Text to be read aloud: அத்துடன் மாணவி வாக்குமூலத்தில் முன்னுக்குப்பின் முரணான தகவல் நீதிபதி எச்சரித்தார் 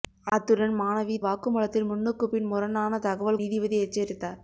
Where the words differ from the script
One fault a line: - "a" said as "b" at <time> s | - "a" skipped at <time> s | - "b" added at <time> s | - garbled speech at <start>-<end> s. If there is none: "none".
none